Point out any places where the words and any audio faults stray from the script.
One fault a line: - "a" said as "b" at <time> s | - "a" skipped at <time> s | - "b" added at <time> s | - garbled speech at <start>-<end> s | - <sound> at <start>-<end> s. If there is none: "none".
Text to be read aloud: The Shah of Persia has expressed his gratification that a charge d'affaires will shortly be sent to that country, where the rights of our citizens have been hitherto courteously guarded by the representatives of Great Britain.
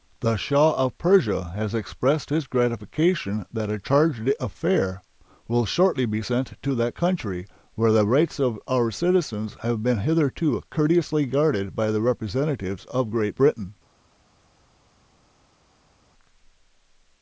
none